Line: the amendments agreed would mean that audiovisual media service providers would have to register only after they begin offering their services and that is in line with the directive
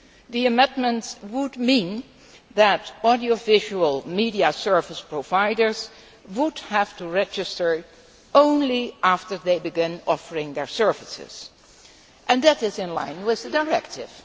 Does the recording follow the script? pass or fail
fail